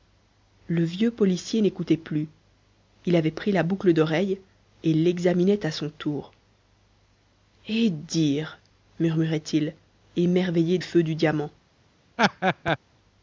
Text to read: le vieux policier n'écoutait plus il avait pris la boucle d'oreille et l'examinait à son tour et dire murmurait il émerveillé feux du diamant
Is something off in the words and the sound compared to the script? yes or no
yes